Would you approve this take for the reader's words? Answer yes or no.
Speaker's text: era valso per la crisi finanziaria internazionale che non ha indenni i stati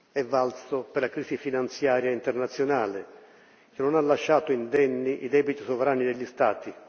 no